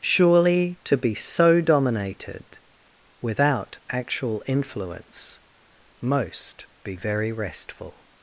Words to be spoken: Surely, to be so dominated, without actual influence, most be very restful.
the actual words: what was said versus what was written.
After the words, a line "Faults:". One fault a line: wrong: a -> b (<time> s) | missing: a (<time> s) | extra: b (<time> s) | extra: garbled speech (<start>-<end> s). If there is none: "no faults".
Surely, to be so dominated, without actual influence, most be very restful.
Faults:
no faults